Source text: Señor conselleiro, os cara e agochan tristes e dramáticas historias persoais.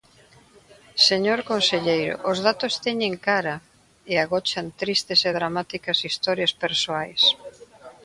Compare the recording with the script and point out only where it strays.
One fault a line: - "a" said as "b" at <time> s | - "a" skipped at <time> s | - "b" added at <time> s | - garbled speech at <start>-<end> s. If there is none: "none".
- "datos teñen" added at 2.5 s